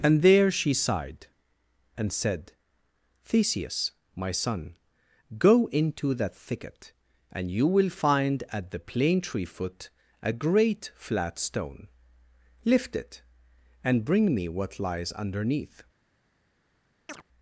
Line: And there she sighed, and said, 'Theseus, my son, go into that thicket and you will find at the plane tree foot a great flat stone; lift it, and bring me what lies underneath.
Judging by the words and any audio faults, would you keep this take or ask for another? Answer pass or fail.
fail